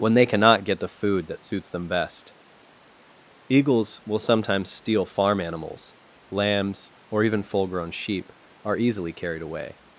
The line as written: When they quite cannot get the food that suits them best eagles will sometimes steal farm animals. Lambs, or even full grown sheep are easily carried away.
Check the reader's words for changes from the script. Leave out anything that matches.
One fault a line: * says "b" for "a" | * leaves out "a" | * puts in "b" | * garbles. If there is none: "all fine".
* leaves out "quite"